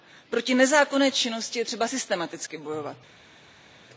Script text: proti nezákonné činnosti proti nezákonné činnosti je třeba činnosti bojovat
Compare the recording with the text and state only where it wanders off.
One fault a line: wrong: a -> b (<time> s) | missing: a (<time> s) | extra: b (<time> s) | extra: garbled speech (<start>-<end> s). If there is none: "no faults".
missing: proti nezákonné činnosti (1.6 s)
wrong: činnosti -> systematicky (1.8 s)